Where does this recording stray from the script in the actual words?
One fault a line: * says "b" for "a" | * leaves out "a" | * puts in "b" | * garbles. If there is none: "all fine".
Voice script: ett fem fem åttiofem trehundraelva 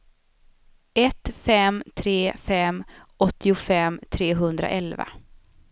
* puts in "tre"